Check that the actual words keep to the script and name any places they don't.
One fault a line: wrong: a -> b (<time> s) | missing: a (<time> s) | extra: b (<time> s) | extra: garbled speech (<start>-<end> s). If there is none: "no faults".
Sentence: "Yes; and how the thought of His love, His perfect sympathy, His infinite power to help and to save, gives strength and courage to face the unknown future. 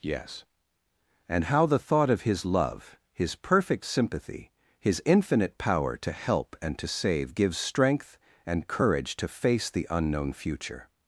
no faults